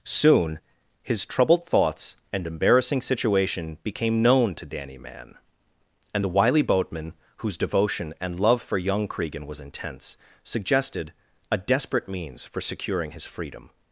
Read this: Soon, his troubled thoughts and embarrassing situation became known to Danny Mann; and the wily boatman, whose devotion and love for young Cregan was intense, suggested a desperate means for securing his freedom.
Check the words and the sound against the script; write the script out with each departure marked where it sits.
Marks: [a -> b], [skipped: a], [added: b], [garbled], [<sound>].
Soon, his troubled thoughts and embarrassing situation became known to Danny Mann; and the wily boatman, whose devotion and love for young Cregan was intense, suggested a desperate means for securing his freedom.